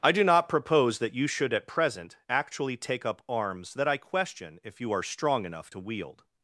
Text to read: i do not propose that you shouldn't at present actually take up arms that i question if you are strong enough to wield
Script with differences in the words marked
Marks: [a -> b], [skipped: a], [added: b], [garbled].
i do not propose that you [shouldn't -> should] at present actually take up arms that i question if you are strong enough to wield